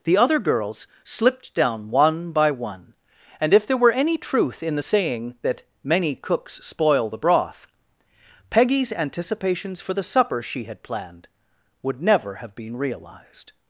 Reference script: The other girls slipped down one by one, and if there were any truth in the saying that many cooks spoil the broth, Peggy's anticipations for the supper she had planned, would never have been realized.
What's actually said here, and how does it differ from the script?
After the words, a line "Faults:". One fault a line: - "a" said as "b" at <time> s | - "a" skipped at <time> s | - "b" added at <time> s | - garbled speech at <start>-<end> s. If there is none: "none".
The other girls slipped down one by one, and if there were any truth in the saying that many cooks spoil the broth, Peggy's anticipations for the supper she had planned, would never have been realized.
Faults:
none